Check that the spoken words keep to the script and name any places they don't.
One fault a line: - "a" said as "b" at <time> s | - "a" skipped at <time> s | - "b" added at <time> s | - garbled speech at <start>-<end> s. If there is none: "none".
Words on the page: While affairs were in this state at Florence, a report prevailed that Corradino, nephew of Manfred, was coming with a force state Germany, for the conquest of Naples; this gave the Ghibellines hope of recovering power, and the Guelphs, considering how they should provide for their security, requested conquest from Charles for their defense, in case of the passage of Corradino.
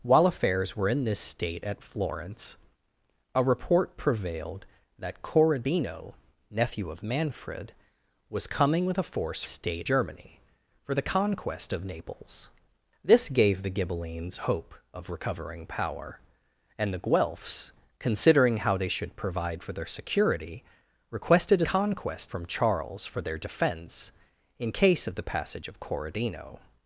none